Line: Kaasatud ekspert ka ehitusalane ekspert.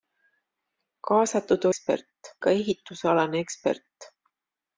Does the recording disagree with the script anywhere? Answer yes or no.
no